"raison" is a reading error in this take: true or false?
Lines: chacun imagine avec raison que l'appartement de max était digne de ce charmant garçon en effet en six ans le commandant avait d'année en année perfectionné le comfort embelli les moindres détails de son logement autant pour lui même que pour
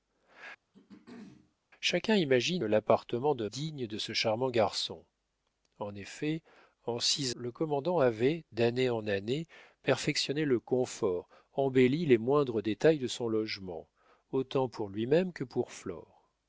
true